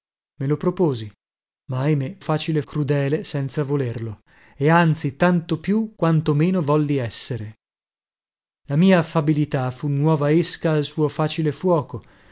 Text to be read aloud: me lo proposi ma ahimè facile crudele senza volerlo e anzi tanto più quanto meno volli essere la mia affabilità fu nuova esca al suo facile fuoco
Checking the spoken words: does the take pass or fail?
pass